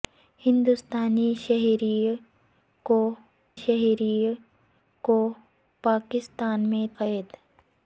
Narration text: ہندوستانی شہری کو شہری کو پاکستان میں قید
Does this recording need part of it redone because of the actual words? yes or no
no